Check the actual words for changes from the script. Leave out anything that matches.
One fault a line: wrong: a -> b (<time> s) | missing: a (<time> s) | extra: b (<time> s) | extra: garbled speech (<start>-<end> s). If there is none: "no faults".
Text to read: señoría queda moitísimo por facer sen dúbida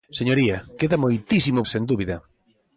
missing: por facer (1.6 s)